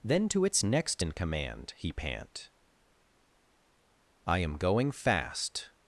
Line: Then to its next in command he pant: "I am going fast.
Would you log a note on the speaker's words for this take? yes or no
no